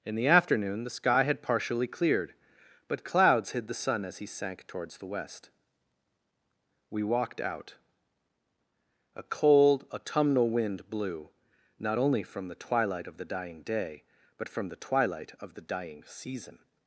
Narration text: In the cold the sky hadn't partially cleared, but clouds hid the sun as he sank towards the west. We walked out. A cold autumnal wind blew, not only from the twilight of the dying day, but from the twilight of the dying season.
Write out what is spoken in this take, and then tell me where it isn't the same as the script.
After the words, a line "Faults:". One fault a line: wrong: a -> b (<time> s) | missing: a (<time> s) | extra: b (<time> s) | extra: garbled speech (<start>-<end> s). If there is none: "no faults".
In the afternoon the sky had partially cleared, but clouds hid the sun as he sank towards the west. We walked out. A cold autumnal wind blew, not only from the twilight of the dying day, but from the twilight of the dying season.
Faults:
wrong: cold -> afternoon (0.3 s)
wrong: hadn't -> had (1.2 s)